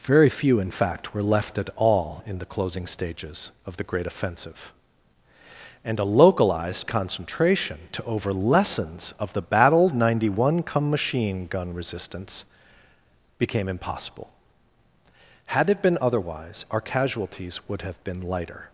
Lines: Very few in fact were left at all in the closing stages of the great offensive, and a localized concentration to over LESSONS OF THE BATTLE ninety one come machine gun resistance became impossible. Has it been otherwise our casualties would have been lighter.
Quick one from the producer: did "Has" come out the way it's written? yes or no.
no